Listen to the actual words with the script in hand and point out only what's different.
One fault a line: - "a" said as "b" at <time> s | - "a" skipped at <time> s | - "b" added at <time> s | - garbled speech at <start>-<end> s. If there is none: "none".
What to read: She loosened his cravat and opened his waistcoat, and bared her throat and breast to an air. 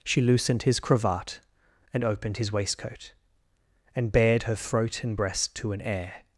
none